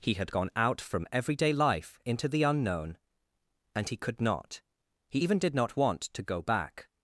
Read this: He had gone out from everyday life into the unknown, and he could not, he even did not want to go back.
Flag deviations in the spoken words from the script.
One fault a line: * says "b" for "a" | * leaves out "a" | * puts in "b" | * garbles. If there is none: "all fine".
all fine